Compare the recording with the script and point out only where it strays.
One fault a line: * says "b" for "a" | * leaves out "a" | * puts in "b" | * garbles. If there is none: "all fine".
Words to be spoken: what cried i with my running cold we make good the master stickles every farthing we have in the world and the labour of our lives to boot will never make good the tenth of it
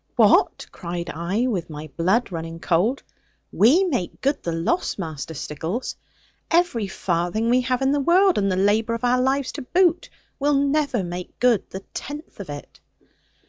* puts in "blood"
* puts in "loss"